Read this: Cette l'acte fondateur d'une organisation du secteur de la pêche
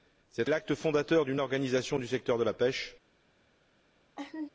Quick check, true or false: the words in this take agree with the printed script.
true